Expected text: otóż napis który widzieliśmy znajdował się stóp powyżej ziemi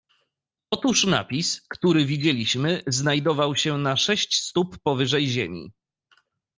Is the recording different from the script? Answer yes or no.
yes